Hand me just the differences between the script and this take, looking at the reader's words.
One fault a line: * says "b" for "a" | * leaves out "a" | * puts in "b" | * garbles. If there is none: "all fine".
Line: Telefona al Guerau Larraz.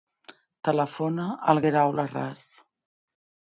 all fine